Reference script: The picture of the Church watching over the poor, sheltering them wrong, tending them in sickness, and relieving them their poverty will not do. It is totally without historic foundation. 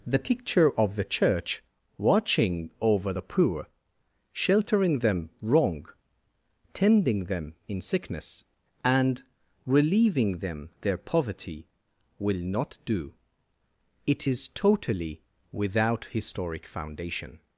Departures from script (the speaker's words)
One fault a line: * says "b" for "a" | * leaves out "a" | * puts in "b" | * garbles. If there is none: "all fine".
all fine